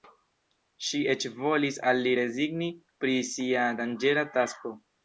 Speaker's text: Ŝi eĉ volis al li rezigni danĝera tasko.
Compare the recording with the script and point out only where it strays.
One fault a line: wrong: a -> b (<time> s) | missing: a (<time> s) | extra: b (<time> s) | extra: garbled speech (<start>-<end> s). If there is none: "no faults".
extra: pri sia (3.0 s)